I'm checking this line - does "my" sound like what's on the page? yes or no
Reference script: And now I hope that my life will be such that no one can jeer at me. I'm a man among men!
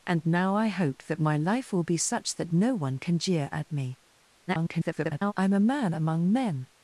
yes